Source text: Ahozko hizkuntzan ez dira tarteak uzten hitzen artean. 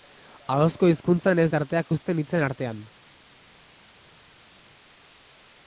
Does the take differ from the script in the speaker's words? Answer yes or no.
yes